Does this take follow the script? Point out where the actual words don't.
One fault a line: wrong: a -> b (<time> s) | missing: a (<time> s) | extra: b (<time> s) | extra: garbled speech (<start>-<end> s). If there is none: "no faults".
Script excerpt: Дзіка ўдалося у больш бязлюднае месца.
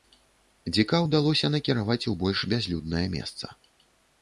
extra: накіраваць (1.6 s)